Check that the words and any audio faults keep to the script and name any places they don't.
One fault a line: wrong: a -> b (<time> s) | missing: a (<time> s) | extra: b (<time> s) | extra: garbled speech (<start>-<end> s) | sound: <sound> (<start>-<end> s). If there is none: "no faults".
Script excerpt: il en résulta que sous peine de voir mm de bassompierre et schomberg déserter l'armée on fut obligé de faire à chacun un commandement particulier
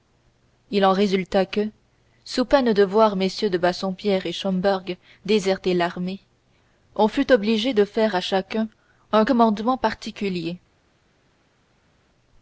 no faults